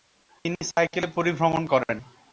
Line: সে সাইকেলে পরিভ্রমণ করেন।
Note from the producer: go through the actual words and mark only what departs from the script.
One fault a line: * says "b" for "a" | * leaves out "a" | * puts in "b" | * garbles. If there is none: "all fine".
* says "তিনি" for "সে"